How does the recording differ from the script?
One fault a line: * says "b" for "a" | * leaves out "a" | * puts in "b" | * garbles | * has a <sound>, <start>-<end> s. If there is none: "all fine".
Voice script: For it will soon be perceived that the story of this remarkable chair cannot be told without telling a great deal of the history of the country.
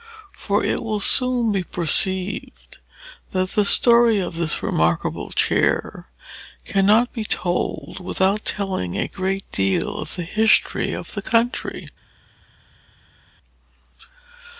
all fine